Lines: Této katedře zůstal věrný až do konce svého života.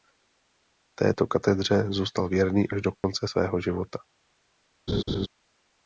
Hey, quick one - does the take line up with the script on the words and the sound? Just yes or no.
no